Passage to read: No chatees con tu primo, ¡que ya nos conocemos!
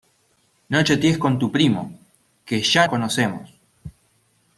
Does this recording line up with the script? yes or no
no